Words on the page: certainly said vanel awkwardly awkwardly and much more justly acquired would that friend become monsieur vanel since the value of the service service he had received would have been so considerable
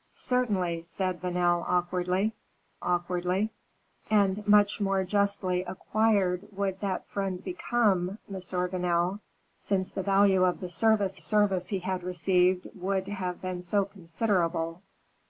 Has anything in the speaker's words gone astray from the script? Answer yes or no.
no